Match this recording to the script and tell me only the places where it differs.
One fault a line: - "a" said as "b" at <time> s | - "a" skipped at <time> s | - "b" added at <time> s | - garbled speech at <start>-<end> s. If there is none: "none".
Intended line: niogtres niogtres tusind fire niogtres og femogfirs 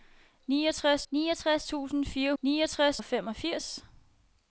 none